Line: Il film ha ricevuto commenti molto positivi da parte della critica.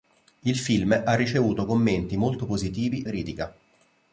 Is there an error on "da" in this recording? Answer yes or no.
yes